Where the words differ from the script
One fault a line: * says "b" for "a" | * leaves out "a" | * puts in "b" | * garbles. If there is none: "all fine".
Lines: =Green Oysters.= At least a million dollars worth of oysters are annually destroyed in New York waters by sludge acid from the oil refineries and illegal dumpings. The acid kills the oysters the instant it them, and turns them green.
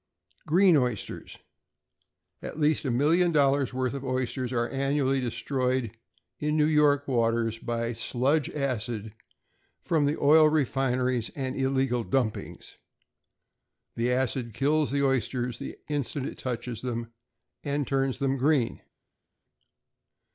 * puts in "touches"